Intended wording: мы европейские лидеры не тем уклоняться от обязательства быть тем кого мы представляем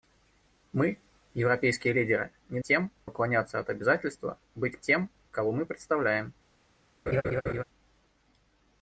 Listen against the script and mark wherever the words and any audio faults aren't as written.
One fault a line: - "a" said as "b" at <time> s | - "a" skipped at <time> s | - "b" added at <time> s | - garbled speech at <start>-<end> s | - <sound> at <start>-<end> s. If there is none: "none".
- laugh at 7.1-7.6 s